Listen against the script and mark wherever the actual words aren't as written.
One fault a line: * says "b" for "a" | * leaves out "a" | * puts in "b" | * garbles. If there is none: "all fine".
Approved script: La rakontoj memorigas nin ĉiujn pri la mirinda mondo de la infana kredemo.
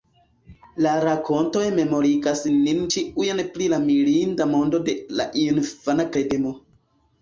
all fine